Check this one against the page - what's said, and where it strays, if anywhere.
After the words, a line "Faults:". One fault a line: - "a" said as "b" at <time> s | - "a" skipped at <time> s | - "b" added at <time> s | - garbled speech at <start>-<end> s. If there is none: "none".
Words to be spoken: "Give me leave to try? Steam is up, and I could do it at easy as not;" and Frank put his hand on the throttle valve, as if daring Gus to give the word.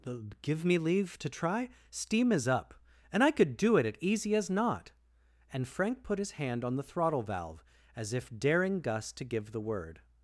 "Give me leave to try? Steam is up, and I could do it at easy as not;" and Frank put his hand on the throttle valve, as if daring Gus to give the word.
Faults:
none